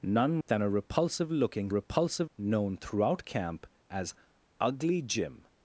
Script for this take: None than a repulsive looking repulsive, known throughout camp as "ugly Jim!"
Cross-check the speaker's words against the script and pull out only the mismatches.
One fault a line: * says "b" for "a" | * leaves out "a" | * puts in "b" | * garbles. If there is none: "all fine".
all fine